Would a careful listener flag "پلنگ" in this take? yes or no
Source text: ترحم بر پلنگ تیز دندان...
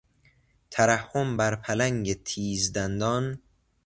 no